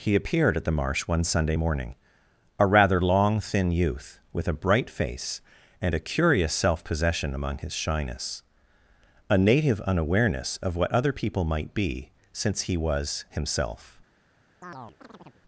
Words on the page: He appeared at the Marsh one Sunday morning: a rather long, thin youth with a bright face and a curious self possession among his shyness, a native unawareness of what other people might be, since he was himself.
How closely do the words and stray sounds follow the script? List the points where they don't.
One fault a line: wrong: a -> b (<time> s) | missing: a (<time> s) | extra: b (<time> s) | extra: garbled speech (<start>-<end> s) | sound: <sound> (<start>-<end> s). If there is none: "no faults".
sound: chirp (14.6-15.4 s)